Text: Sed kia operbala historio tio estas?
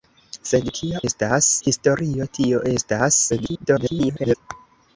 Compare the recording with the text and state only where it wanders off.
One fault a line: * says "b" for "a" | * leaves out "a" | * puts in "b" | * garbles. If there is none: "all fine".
* says "estas" for "operbala"
* garbles